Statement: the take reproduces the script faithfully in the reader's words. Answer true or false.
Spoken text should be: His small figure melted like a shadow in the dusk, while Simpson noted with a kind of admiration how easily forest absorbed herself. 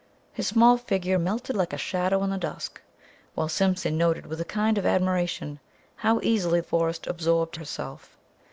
true